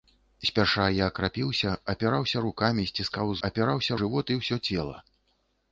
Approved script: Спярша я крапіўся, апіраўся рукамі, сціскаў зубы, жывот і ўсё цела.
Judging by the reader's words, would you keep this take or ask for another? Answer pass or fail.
fail